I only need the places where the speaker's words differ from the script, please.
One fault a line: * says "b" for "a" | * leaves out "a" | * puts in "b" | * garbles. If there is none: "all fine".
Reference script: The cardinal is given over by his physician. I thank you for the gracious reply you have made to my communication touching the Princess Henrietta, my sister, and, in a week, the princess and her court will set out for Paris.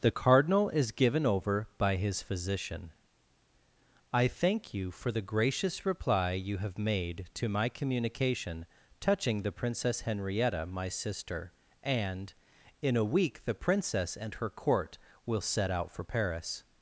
all fine